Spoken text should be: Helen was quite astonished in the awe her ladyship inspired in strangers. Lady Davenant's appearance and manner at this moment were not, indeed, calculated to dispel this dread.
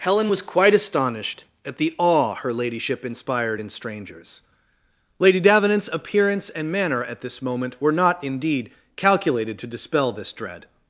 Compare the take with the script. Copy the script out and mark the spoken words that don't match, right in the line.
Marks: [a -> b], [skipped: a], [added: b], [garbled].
Helen was quite astonished [in -> at] the awe her ladyship inspired in strangers. Lady Davenant's appearance and manner at this moment were not, indeed, calculated to dispel this dread.